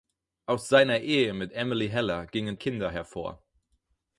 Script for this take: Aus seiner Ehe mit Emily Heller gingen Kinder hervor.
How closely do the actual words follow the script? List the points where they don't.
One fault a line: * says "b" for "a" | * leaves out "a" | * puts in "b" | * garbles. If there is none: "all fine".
all fine